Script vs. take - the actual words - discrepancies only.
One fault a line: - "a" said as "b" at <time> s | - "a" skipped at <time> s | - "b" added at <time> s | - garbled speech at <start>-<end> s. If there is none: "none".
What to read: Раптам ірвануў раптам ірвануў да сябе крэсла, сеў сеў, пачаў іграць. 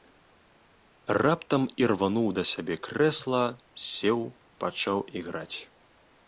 - "раптам ірвануў" skipped at 2.2 s
- "сеў" skipped at 4.2 s